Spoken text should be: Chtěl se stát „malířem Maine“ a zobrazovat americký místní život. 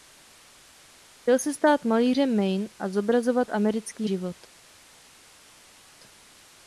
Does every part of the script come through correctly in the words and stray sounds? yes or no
no